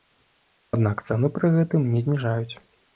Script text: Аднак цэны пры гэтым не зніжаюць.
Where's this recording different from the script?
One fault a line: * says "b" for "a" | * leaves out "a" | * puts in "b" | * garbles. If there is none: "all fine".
all fine